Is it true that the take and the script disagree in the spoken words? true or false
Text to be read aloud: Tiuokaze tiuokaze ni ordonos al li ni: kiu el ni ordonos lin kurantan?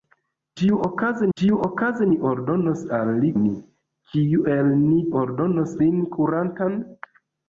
false